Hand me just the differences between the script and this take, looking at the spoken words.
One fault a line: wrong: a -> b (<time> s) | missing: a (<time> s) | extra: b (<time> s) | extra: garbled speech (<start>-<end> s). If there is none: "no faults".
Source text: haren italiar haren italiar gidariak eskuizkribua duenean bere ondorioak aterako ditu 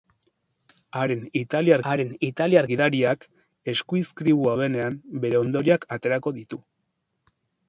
no faults